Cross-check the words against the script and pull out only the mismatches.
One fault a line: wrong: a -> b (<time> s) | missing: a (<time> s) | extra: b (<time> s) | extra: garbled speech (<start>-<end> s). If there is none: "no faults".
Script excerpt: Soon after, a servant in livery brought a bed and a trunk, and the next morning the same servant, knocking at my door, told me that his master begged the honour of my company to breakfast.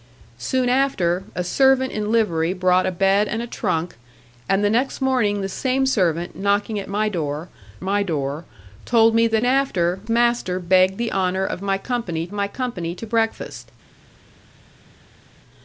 extra: my door (7.8 s)
wrong: his -> after (9.4 s)
extra: my company (12.3 s)